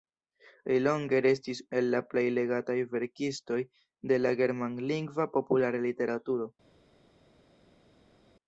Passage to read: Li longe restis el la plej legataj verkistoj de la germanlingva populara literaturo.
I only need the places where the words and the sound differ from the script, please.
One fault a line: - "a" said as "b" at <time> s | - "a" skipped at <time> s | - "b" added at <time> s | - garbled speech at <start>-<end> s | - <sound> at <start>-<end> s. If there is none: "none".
none